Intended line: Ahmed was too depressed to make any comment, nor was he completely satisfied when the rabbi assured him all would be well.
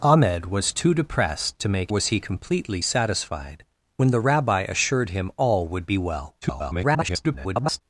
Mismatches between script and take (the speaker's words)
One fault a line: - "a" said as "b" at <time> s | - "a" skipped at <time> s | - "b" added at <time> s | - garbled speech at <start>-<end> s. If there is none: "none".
- "any comment nor" skipped at 1.9 s
- garbled speech at 6.4-7.8 s